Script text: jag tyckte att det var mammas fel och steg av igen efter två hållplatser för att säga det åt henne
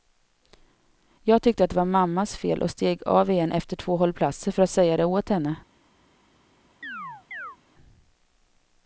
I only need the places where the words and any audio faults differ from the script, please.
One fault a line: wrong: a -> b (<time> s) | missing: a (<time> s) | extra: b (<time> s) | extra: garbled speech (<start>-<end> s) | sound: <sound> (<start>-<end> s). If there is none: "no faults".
sound: chirp (6.8-7.6 s)